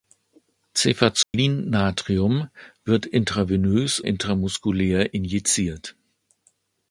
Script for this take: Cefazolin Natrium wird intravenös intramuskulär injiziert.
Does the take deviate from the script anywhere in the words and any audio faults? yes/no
yes